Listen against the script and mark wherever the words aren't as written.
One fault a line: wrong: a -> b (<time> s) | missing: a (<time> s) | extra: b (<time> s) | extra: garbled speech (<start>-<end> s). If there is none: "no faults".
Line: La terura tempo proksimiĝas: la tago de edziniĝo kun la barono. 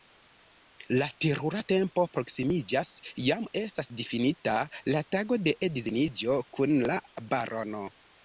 extra: jam estas difinita (3.3 s)